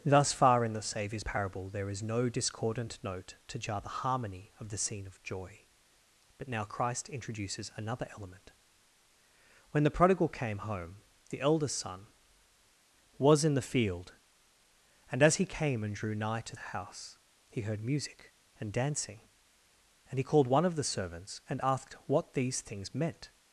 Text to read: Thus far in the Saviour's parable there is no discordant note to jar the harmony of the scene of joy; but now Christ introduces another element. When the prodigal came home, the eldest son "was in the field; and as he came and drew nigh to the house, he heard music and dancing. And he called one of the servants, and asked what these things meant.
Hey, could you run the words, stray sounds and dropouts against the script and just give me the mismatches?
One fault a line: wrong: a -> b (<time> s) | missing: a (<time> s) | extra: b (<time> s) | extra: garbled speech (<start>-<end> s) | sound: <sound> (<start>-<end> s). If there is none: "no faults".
no faults